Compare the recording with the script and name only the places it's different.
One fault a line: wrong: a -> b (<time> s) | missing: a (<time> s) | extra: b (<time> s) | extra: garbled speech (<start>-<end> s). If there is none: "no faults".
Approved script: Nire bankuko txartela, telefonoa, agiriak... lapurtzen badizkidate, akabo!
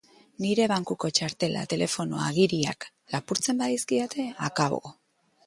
no faults